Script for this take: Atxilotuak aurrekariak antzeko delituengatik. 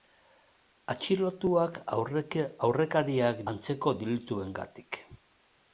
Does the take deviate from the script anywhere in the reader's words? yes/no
no